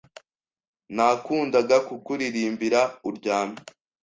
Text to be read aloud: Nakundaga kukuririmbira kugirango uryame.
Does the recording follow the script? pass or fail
fail